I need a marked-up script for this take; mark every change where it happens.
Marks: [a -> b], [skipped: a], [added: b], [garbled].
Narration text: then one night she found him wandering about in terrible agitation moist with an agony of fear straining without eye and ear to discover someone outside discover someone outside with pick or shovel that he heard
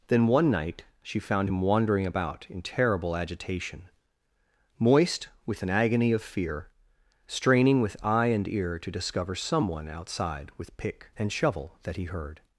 then one night she found him wandering about in terrible agitation moist with an agony of fear straining [without -> with] eye and ear to discover someone outside [skipped: discover someone outside] with pick [or -> and] shovel that he heard